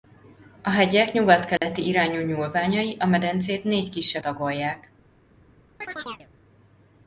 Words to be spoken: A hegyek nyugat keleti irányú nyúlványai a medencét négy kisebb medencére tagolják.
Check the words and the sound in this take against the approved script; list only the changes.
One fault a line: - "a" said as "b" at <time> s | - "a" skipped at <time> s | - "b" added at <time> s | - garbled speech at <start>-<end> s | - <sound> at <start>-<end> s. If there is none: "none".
- dropout at 1.6-1.6 s
- "medencére" skipped at 4.2 s
- chirp at 5.8-6.3 s